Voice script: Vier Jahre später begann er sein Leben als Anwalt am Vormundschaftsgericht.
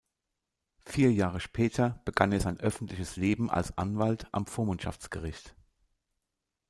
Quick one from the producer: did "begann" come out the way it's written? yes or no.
yes